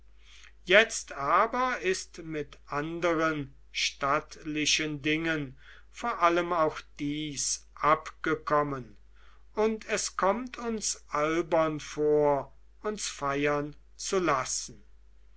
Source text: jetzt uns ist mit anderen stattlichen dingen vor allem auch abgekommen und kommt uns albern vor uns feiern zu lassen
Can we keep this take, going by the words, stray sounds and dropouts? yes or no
no